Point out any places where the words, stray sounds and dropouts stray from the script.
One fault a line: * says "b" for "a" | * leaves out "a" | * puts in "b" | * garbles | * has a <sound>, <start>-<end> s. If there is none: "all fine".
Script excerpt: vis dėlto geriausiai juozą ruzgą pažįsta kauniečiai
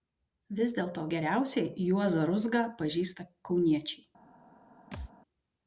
* has a thud, 4.9-5.1 s